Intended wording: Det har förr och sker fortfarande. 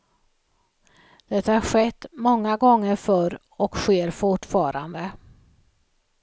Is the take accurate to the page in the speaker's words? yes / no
no